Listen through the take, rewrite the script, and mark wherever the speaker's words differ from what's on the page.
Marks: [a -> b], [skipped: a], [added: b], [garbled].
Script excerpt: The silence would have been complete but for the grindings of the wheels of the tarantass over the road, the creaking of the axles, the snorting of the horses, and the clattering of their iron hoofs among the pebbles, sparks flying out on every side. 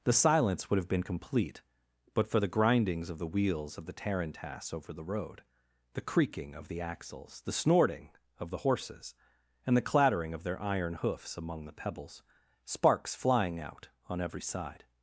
The silence would have been complete but for the grindings of the wheels of the tarantass over the road, the creaking of the axles, the snorting of the horses, and the clattering of their iron hoofs among the pebbles, sparks flying out on every side.